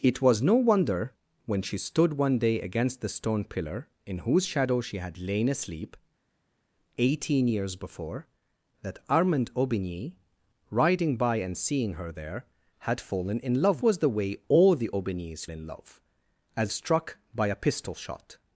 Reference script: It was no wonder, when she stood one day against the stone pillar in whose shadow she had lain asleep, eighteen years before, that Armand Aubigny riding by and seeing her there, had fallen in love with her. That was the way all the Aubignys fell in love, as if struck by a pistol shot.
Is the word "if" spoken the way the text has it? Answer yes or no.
no